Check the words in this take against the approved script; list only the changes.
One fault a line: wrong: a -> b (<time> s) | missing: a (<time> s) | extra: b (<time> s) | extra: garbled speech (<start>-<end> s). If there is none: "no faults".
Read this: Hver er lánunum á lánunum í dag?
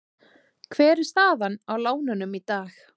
wrong: lánunum -> staðan (1.1 s)